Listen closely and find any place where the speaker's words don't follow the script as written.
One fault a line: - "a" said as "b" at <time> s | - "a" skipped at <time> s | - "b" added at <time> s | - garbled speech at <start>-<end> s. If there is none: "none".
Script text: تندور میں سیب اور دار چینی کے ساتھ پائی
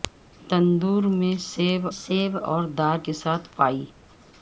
- "سیب" added at 1.9 s
- "چینی" skipped at 3.0 s